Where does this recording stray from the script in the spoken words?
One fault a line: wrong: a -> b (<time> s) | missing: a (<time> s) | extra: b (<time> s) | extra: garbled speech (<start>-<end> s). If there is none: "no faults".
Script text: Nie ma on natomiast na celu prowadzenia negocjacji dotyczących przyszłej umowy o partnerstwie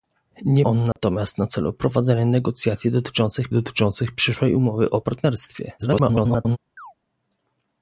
missing: ma (0.7 s)
extra: dotyczących (3.5 s)
extra: garbled speech (5.8-6.6 s)